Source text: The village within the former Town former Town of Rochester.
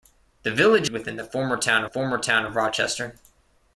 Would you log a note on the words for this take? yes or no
no